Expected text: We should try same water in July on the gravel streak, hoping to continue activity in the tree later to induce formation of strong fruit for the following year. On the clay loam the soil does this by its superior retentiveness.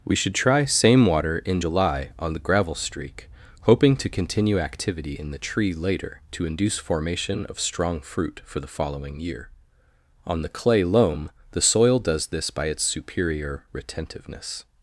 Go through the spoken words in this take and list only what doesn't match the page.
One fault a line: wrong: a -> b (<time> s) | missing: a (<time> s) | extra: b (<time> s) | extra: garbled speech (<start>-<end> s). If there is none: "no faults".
no faults